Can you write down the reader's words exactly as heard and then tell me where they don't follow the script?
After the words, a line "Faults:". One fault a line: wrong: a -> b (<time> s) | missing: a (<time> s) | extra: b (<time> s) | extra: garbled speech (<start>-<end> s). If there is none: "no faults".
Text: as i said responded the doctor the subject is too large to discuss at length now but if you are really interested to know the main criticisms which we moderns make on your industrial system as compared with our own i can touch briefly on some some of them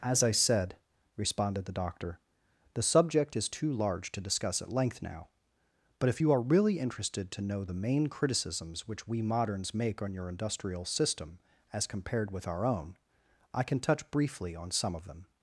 as i said responded the doctor the subject is too large to discuss at length now but if you are really interested to know the main criticisms which we moderns make on your industrial system as compared with our own i can touch briefly on some of them
Faults:
missing: some (14.9 s)